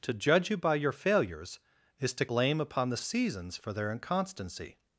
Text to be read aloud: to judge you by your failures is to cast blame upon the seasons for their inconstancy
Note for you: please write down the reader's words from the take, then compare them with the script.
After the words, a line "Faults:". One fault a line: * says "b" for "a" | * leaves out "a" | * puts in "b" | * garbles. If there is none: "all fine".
to judge you by your failures is to blame upon the seasons for their inconstancy
Faults:
* leaves out "cast"